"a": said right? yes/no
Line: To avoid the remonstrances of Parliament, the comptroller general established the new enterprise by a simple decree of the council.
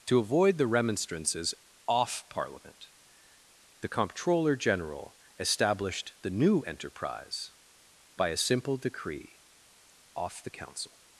yes